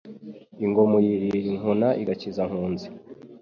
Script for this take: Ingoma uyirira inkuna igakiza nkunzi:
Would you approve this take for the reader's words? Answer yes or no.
yes